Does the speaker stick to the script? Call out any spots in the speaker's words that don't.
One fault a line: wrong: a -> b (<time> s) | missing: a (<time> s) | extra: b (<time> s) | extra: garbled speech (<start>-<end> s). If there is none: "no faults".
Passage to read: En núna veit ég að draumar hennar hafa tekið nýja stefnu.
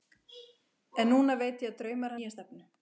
missing: hennar hafa tekið (2.2 s)